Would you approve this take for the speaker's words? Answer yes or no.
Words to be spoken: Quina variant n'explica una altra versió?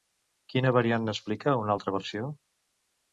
yes